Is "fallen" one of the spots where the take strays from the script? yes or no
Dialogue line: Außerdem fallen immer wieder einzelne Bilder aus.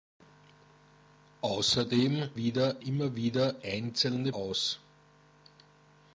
yes